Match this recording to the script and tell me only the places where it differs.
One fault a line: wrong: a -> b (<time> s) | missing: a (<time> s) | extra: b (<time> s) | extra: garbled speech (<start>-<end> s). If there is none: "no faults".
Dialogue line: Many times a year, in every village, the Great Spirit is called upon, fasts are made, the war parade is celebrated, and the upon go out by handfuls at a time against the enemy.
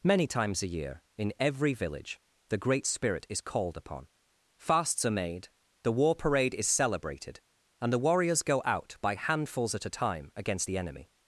wrong: upon -> warriors (8.0 s)